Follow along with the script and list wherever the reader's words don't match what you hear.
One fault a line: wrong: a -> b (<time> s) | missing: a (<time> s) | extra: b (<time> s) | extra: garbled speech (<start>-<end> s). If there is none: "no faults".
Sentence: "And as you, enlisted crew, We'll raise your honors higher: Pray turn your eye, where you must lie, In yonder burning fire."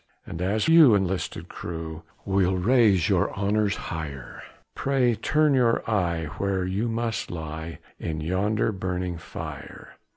no faults